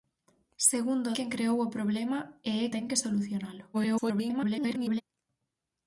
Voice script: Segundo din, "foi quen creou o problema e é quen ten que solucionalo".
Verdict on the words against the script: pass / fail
fail